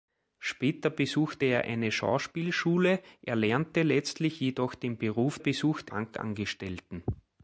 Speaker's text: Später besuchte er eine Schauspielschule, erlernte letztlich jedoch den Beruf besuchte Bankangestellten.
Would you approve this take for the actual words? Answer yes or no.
yes